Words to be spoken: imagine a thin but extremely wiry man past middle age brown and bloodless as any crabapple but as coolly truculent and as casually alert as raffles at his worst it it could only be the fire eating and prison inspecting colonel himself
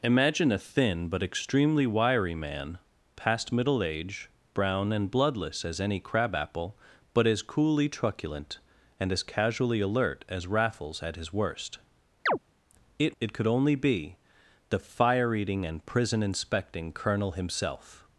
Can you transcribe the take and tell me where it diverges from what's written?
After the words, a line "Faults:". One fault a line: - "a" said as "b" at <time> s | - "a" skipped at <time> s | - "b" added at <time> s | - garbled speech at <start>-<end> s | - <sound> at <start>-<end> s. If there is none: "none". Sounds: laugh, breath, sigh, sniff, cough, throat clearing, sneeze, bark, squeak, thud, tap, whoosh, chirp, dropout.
imagine a thin but extremely wiry man past middle age brown and bloodless as any crabapple but as coolly truculent and as casually alert as raffles at his worst it it could only be the fire eating and prison inspecting colonel himself
Faults:
- chirp at 12.3-12.4 s